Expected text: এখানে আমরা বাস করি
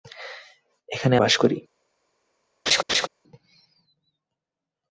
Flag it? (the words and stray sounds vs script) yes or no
yes